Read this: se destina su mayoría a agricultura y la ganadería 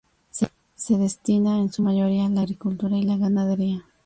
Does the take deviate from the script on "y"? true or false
false